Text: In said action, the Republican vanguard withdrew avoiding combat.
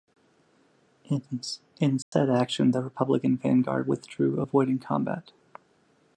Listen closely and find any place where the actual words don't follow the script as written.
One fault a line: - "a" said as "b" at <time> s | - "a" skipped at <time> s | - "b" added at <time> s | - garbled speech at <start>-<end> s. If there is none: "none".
none